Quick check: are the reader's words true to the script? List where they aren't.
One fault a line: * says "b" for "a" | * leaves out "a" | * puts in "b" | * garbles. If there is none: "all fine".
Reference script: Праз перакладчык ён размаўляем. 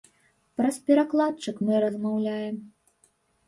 * says "мы" for "ён"